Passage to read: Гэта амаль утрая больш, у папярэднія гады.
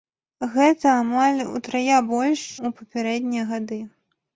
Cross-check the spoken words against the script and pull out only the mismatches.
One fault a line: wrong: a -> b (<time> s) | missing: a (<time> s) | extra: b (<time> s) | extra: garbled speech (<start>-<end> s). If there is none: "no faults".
no faults